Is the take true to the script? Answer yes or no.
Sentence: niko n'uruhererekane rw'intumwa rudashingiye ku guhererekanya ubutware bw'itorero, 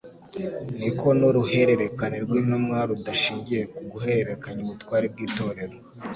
yes